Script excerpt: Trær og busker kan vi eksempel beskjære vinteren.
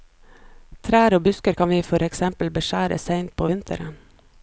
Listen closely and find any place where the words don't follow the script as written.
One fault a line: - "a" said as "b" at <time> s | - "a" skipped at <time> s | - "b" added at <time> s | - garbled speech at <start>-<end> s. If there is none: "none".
- "for" added at 1.9 s
- "seint på" added at 3.0 s